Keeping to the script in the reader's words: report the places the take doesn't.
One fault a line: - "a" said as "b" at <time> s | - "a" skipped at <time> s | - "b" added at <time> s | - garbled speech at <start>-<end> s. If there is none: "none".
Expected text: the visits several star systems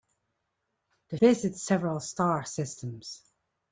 none